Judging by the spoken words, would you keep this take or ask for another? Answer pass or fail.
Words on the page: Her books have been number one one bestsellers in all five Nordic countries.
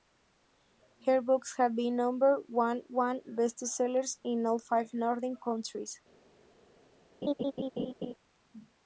pass